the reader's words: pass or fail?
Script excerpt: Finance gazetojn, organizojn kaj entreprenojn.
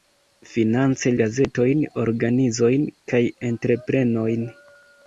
pass